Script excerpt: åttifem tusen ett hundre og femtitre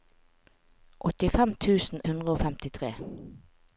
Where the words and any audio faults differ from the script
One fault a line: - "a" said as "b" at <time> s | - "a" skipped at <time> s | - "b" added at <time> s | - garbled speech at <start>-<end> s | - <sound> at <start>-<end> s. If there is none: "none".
- "ett" skipped at 2.0 s